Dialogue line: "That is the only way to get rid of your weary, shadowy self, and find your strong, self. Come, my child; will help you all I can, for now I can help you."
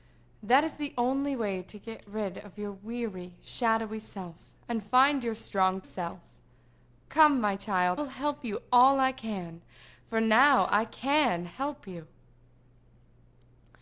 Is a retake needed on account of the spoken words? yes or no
no